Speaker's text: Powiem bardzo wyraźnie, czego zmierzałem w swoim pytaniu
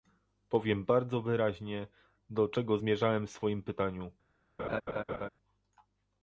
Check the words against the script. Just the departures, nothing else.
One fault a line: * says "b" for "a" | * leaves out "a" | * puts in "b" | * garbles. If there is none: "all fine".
* puts in "do"